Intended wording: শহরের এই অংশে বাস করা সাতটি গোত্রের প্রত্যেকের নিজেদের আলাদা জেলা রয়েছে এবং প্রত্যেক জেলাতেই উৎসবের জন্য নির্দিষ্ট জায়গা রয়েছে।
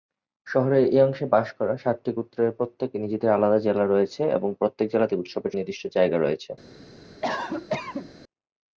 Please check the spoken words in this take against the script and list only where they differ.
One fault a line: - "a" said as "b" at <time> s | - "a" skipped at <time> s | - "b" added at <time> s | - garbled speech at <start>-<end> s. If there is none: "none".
- "জন্য" skipped at 5.5 s